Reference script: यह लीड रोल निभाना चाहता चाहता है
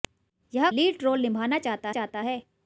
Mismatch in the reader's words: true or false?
false